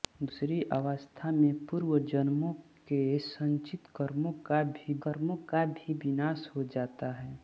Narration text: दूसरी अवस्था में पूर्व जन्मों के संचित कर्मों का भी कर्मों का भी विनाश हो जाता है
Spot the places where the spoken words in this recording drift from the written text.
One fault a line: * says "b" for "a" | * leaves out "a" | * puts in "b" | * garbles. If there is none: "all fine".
all fine